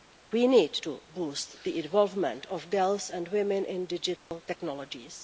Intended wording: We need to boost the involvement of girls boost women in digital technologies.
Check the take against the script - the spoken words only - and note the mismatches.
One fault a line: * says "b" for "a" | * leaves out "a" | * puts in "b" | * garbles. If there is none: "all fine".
* says "and" for "boost"